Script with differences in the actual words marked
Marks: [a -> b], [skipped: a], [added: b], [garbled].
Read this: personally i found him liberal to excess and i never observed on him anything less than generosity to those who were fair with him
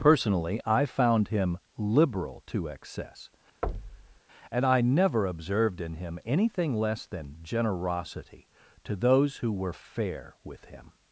personally i found him liberal to excess and i never observed [on -> in] him anything less than generosity to those who were fair with him